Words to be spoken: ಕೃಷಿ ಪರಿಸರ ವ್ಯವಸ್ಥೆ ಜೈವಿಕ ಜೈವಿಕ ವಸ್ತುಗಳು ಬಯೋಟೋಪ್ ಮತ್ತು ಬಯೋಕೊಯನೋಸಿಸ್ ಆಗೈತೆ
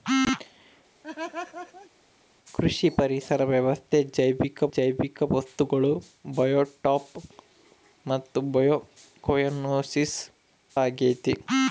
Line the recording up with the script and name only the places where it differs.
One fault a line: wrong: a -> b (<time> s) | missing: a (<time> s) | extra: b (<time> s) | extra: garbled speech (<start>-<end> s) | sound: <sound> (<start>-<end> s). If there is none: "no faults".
sound: laugh (1.0-1.9 s)